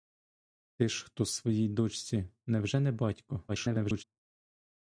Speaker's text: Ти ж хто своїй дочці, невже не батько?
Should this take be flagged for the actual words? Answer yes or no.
yes